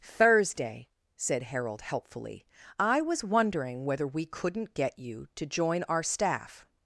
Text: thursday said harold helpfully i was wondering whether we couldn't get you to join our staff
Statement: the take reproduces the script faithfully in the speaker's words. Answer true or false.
true